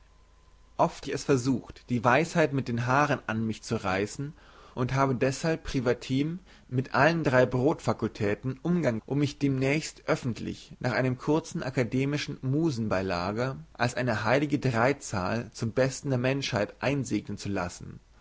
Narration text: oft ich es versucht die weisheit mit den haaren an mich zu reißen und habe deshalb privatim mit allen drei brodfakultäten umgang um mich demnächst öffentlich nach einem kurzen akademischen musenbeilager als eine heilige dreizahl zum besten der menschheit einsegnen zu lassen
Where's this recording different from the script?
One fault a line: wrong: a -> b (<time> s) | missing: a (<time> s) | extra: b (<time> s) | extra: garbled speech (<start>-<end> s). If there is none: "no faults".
no faults